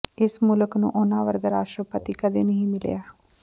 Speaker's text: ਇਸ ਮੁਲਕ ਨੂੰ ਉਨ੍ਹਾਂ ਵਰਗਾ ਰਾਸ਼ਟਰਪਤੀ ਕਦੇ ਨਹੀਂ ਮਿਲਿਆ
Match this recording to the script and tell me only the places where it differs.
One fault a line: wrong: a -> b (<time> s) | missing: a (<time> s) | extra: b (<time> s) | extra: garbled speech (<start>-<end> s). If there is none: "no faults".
no faults